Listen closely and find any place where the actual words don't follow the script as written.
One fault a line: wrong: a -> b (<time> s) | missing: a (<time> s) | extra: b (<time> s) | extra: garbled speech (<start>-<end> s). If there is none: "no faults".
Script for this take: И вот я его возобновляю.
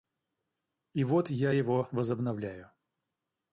no faults